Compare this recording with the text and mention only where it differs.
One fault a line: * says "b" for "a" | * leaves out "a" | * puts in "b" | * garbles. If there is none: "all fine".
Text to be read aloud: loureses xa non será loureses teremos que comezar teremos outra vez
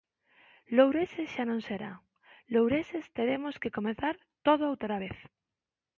* says "todo" for "teremos"